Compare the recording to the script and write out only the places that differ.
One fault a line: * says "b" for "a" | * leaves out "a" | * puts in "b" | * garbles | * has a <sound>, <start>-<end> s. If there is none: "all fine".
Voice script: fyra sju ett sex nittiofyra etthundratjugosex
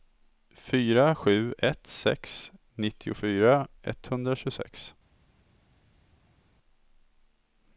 all fine